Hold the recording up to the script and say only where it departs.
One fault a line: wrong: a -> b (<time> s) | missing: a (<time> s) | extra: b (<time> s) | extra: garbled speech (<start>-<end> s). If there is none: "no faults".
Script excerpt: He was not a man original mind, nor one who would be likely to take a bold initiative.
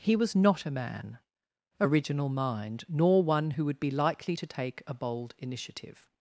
no faults